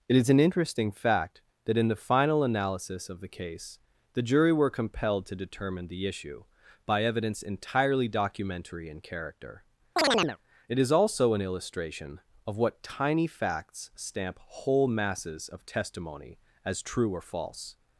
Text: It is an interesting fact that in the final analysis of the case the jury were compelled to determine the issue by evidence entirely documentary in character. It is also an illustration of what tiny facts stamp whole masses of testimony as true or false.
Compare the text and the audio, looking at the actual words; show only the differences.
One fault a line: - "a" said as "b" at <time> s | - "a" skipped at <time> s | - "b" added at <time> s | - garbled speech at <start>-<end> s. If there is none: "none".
none